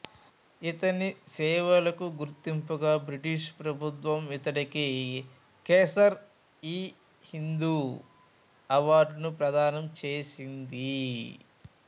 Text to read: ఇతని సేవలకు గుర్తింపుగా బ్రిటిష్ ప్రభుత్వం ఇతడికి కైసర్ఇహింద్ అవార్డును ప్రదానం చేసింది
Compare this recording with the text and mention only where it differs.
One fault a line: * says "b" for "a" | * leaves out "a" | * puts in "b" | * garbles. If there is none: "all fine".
all fine